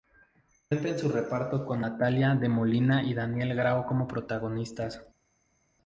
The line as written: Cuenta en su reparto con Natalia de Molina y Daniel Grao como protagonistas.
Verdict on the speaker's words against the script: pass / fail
pass